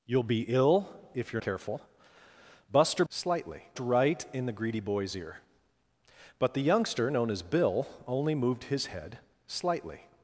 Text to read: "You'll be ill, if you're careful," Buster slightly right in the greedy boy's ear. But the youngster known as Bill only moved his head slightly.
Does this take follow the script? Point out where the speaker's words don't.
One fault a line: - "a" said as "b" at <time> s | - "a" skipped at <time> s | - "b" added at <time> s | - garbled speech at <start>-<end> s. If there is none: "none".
none